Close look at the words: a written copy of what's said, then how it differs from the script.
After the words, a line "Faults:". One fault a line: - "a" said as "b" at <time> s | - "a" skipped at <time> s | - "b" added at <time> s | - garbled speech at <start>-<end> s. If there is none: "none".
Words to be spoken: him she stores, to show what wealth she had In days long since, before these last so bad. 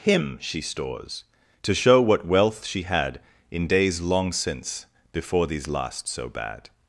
him she stores, to show what wealth she had In days long since, before these last so bad.
Faults:
none